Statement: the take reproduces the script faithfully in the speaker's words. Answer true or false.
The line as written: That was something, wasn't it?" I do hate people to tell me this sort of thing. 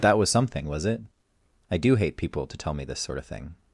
false